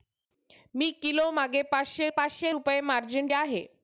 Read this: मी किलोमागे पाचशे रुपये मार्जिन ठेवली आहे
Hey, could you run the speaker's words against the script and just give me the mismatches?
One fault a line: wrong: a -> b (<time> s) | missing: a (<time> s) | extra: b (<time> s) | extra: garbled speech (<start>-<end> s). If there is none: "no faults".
extra: पाचशे (2.1 s)
missing: ठेवली (3.3 s)